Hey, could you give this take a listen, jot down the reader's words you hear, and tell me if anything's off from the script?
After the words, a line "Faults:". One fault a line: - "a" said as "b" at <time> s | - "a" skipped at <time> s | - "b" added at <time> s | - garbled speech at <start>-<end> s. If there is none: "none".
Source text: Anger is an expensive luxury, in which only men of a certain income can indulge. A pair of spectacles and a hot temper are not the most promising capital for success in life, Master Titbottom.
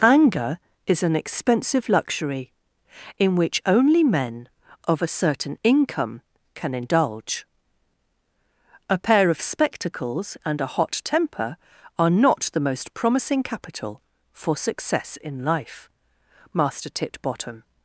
Anger is an expensive luxury, in which only men of a certain income can indulge. A pair of spectacles and a hot temper are not the most promising capital for success in life, Master Titbottom.
Faults:
none